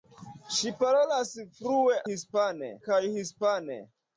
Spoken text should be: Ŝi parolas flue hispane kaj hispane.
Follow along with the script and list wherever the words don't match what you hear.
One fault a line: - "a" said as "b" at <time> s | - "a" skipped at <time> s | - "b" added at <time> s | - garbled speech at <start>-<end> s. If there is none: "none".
none